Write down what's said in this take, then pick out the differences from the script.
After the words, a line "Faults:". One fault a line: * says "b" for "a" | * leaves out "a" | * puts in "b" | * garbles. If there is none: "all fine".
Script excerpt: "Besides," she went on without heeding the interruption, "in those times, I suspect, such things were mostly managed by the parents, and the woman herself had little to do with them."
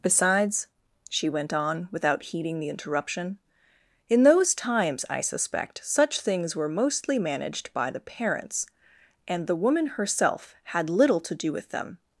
"Besides," she went on without heeding the interruption, "in those times, I suspect, such things were mostly managed by the parents, and the woman herself had little to do with them."
Faults:
all fine